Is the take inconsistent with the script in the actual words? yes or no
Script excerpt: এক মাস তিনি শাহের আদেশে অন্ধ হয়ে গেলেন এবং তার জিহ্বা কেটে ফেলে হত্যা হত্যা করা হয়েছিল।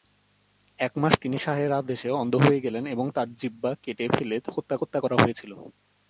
no